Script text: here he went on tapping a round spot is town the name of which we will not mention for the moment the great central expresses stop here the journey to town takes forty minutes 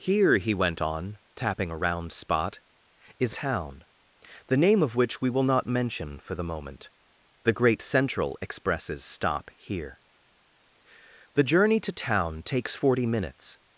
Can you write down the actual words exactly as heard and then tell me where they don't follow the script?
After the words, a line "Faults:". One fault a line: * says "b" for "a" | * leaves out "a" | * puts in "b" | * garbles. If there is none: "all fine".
here he went on tapping a round spot is town the name of which we will not mention for the moment the great central expresses stop here the journey to town takes forty minutes
Faults:
all fine